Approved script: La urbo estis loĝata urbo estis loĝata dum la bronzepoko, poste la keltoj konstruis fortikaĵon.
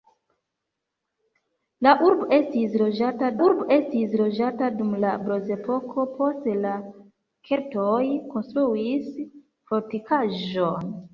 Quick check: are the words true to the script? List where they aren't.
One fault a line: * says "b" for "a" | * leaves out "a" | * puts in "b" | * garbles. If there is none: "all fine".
all fine